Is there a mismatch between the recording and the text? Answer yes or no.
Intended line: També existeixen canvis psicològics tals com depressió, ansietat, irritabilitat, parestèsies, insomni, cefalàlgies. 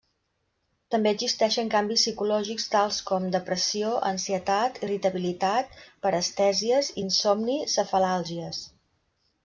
no